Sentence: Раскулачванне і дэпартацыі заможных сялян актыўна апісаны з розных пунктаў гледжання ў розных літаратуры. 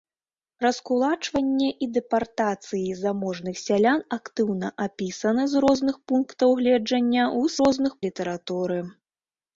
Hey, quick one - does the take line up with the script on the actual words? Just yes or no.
yes